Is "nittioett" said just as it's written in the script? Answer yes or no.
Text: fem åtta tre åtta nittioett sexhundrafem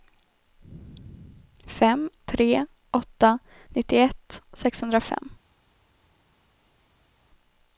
yes